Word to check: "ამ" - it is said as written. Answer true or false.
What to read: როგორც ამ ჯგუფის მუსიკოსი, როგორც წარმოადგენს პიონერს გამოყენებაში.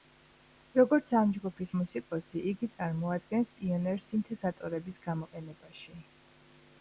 true